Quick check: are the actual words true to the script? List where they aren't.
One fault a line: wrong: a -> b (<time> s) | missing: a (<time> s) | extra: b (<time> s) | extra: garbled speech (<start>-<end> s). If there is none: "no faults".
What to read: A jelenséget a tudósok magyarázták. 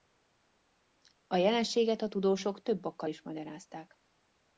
extra: több okkal is (2.6 s)